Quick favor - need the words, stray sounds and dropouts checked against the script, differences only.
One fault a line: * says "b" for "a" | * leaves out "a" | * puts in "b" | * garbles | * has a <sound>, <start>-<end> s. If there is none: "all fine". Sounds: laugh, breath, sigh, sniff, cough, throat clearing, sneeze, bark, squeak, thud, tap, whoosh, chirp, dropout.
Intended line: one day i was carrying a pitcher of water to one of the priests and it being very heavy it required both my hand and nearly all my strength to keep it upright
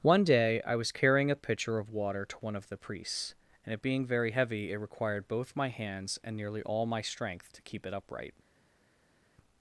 * says "hands" for "hand"